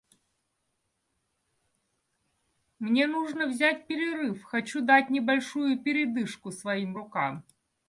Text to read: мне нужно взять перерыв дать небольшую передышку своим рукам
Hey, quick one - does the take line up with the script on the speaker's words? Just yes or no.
no